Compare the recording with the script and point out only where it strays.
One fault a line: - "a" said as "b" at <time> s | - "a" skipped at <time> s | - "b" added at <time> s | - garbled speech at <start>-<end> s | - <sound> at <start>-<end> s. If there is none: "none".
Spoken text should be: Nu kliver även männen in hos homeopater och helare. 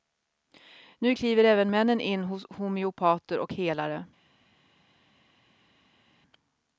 none